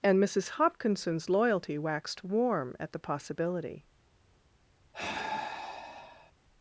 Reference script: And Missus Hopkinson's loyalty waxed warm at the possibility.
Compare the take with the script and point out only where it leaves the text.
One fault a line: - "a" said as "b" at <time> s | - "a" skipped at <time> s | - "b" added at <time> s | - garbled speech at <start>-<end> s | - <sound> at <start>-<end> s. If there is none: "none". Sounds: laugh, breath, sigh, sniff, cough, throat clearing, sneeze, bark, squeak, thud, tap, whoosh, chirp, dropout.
- sigh at 4.9-6.3 s